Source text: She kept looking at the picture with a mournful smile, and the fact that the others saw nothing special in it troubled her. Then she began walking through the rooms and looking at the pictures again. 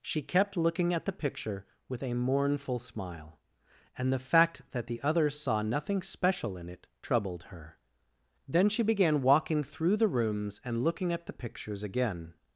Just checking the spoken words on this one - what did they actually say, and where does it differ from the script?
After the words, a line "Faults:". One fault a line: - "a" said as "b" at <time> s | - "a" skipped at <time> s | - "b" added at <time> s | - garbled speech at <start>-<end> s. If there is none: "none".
She kept looking at the picture with a mournful smile, and the fact that the others saw nothing special in it troubled her. Then she began walking through the rooms and looking at the pictures again.
Faults:
none